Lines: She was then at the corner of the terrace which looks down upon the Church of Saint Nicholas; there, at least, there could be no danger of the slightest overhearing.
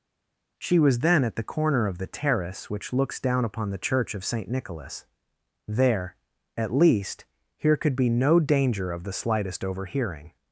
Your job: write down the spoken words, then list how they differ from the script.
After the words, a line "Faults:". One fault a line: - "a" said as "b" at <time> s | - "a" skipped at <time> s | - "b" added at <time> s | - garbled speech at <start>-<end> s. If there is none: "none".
She was then at the corner of the terrace which looks down upon the Church of Saint Nicholas; there, at least, here could be no danger of the slightest overhearing.
Faults:
- "there" said as "here" at 7.6 s